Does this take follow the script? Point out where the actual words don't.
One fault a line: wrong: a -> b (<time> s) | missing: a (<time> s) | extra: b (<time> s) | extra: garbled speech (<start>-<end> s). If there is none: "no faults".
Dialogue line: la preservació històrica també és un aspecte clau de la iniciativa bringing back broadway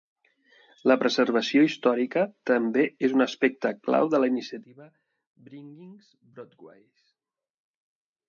missing: back (5.9 s)